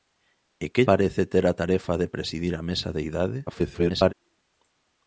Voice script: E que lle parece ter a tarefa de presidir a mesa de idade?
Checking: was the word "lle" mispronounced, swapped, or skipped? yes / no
yes